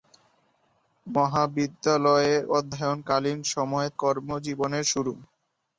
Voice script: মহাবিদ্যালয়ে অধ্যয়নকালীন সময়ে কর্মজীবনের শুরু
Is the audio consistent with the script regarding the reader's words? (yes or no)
yes